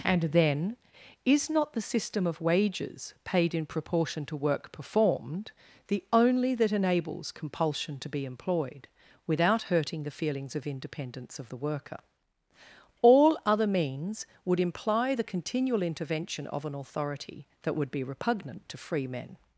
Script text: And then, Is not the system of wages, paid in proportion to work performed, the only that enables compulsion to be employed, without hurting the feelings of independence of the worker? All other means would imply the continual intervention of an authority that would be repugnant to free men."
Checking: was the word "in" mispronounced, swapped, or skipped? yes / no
no